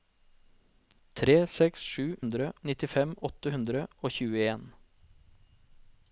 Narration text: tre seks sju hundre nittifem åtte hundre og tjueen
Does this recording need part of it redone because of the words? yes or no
no